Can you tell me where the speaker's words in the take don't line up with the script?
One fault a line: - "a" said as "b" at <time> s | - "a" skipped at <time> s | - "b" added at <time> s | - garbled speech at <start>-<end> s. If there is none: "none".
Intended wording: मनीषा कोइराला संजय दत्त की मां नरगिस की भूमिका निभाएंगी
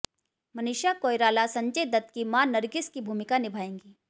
none